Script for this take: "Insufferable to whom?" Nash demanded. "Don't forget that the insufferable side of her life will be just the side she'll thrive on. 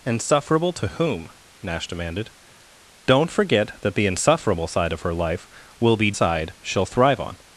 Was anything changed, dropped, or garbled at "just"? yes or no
yes